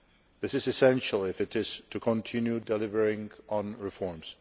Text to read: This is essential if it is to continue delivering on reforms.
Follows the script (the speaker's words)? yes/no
yes